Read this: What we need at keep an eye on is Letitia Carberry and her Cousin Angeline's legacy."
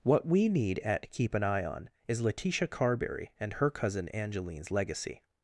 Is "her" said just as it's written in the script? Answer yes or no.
yes